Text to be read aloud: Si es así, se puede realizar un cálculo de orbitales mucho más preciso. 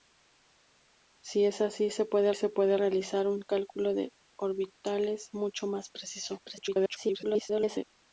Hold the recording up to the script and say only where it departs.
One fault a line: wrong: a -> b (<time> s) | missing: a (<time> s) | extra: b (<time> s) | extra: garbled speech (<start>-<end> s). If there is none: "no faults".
extra: se puede (2.3 s)
extra: garbled speech (6.4-7.8 s)